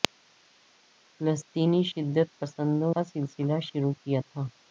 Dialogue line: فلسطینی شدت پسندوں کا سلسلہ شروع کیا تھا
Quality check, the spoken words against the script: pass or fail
pass